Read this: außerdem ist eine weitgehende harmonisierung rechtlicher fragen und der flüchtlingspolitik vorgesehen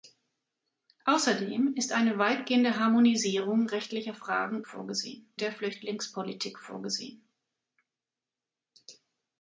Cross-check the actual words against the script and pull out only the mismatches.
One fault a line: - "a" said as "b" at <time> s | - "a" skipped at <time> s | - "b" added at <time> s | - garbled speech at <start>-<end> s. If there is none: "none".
- "und" said as "vorgesehen" at 4.6 s